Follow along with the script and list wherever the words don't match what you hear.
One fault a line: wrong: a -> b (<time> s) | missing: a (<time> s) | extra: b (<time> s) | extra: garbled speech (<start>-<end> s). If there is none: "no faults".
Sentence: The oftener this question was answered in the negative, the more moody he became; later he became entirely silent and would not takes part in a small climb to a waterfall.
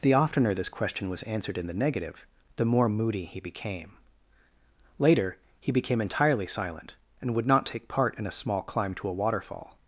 wrong: takes -> take (7.7 s)